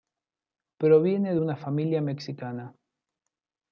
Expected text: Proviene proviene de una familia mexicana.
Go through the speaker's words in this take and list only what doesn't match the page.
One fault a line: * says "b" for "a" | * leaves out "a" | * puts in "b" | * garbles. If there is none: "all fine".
* leaves out "proviene"